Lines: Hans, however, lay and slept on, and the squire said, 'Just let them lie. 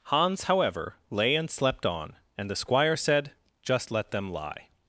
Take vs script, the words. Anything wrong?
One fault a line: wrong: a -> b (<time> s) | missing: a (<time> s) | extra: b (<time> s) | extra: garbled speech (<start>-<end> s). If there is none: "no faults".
no faults